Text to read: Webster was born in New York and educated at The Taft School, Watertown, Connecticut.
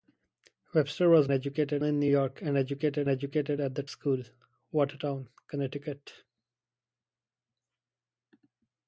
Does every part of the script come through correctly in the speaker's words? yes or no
no